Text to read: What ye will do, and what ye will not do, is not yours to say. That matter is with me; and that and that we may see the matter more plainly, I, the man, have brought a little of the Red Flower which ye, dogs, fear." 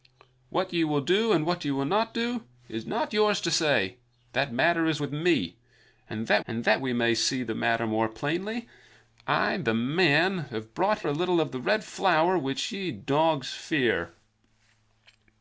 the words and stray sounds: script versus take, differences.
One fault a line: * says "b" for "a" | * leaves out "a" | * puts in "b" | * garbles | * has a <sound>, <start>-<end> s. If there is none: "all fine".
all fine